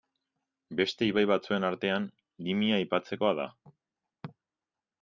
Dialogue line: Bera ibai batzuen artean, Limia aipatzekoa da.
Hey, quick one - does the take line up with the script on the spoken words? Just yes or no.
no